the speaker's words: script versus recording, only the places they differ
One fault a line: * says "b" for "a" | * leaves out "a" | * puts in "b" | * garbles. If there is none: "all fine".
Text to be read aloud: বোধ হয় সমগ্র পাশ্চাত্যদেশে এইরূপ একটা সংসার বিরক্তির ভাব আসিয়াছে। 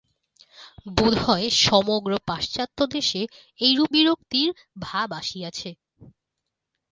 * leaves out "একটা সংসার"